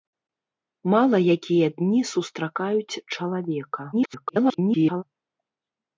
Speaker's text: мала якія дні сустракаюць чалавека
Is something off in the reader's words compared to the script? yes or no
yes